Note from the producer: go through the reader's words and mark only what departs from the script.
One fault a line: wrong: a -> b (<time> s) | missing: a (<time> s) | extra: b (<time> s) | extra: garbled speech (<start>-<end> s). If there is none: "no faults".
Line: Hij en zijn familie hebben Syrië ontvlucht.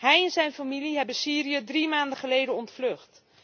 extra: drie maanden geleden (1.6 s)